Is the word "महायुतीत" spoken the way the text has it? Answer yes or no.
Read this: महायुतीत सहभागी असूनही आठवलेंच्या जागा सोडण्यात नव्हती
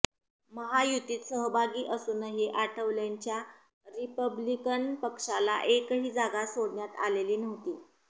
yes